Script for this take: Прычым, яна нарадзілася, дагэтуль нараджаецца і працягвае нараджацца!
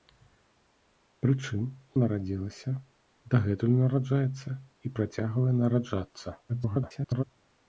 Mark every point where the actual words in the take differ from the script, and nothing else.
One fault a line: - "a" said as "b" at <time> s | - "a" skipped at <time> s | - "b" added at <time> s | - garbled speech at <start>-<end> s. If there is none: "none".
- "яна" skipped at 1.6 s
- garbled speech at 6.5-7.2 s